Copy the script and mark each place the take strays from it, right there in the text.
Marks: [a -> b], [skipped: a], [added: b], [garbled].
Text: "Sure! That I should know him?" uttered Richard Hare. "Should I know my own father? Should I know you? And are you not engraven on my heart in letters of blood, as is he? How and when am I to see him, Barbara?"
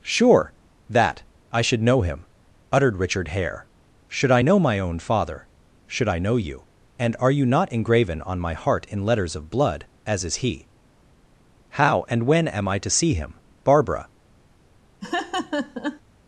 "Sure! That I should know him?" uttered Richard Hare. "Should I know my own father? Should I know you? And are you not engraven on my heart in letters of blood, as is he? How and when am I to see him, Barbara?"